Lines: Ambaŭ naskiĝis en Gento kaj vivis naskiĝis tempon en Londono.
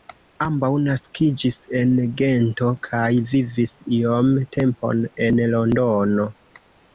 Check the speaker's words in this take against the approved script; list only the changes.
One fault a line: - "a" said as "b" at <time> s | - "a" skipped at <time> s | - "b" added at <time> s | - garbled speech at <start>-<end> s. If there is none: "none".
- "naskiĝis" said as "iom" at 4.0 s